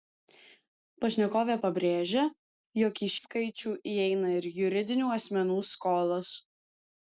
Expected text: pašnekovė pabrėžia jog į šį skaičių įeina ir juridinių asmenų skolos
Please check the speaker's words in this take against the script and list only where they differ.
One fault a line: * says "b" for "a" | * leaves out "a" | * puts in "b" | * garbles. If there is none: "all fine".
* leaves out "šį"